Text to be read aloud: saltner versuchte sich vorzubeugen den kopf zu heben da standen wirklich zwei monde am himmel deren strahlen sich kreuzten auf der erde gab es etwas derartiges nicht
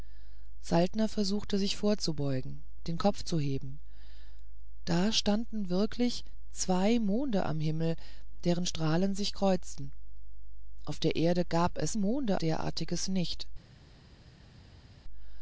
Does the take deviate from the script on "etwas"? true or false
true